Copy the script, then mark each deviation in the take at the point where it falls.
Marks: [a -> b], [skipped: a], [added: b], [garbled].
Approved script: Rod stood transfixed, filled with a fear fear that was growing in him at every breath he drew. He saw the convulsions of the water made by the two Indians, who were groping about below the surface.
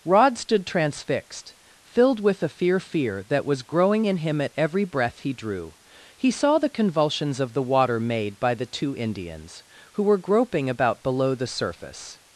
Rod stood transfixed, filled with a fear fear that was growing in him at every breath he drew. He saw the convulsions of the water made by the two Indians, who were groping about below the surface.